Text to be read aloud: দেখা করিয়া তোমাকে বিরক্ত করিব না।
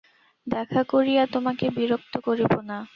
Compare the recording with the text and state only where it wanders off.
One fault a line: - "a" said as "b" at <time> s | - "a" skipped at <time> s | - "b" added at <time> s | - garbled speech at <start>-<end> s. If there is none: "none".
none